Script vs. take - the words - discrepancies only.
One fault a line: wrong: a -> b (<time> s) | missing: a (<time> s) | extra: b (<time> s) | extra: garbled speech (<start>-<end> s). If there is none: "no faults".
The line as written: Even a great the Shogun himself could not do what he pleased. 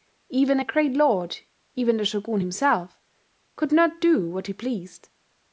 extra: lord even (0.9 s)